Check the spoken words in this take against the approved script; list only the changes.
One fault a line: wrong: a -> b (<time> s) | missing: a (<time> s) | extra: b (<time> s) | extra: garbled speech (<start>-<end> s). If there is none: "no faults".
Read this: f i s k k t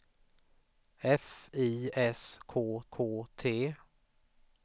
no faults